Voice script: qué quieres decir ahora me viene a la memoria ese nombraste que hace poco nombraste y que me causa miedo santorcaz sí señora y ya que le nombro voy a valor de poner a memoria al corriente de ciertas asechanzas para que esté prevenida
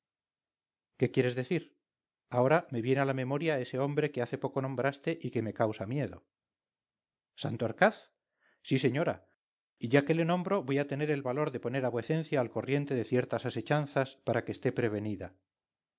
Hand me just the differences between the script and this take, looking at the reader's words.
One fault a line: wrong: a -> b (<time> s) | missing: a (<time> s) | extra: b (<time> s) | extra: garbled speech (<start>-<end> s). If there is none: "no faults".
wrong: nombraste -> hombre (3.8 s)
extra: tener el (10.9 s)
wrong: memoria -> vuecencia (11.9 s)